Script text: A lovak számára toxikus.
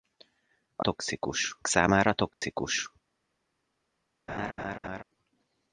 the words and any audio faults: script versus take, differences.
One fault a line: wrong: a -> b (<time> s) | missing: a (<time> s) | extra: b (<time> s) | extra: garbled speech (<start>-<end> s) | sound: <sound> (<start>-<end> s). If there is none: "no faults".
wrong: lovak -> toxikus (0.8 s)
sound: dropout (2.3-2.4 s)
sound: laugh (4.3-5.0 s)